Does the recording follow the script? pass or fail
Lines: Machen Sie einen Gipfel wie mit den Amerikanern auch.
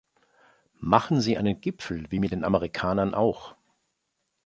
pass